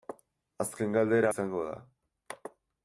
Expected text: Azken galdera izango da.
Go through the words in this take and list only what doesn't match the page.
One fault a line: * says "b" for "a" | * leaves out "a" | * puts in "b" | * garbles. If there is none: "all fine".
all fine